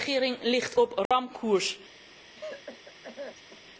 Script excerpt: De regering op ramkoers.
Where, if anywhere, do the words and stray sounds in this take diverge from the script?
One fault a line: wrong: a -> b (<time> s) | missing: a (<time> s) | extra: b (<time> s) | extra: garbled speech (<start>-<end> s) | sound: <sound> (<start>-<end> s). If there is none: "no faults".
extra: ligt (0.4 s)
sound: dropout (1.1-1.1 s)
sound: cough (2.3-3.6 s)